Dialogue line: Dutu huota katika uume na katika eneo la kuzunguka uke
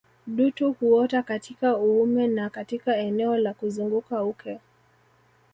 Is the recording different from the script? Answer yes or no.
no